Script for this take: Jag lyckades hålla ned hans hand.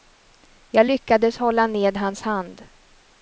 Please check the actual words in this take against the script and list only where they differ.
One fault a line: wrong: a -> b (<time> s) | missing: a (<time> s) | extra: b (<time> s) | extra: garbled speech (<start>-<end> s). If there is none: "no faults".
no faults